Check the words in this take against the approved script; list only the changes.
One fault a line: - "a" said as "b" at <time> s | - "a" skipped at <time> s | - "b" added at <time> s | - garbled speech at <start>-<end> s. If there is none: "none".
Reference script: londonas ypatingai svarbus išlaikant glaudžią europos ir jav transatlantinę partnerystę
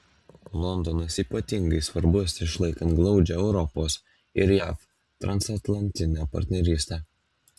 none